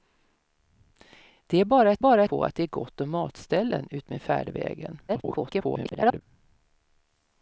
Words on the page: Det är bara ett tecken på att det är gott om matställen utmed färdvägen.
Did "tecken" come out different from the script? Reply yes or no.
yes